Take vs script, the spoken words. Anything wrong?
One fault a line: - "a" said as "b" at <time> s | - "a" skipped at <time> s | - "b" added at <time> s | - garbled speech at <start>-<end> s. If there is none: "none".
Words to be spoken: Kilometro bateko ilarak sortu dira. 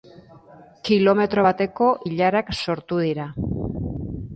none